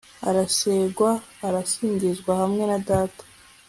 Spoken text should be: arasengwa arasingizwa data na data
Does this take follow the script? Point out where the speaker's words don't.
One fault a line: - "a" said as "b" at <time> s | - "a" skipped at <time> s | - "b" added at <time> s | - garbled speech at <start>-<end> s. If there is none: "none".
- "data" said as "hamwe" at 2.4 s